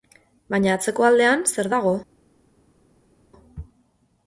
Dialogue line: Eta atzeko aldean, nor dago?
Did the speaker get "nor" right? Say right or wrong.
wrong